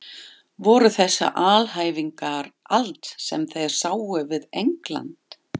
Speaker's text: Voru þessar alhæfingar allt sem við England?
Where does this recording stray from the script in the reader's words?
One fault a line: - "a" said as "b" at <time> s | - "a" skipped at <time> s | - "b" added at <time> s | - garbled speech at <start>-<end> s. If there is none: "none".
- "þeir sáu" added at 3.6 s